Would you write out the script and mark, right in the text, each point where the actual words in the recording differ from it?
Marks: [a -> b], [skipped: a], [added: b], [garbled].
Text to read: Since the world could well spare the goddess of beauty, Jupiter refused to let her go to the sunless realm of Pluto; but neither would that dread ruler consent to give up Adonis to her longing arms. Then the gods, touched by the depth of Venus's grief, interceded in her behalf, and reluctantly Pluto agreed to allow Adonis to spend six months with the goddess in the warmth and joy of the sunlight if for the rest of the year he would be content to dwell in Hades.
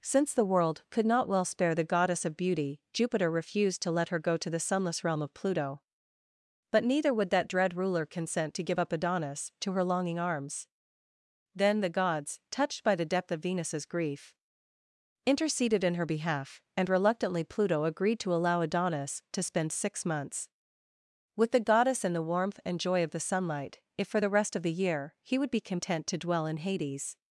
Since the world could [added: not] well spare the goddess of beauty, Jupiter refused to let her go to the sunless realm of Pluto; but neither would that dread ruler consent to give up Adonis to her longing arms. Then the gods, touched by the depth of Venus's grief, interceded in her behalf, and reluctantly Pluto agreed to allow Adonis to spend six months with the goddess in the warmth and joy of the sunlight if for the rest of the year he would be content to dwell in Hades.